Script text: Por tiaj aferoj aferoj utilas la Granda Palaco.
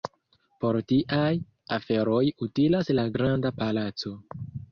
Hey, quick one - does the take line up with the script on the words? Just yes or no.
no